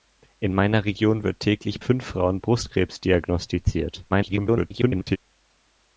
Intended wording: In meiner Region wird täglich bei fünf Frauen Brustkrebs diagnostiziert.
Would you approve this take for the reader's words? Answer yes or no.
no